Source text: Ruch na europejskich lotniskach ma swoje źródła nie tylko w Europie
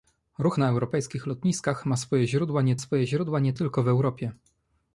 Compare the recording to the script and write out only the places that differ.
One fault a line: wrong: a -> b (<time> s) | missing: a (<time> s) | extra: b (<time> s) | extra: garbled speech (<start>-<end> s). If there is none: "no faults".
extra: swoje źródła nie (2.8 s)